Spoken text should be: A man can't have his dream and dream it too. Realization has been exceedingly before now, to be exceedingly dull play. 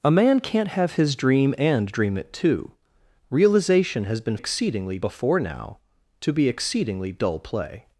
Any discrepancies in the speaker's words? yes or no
no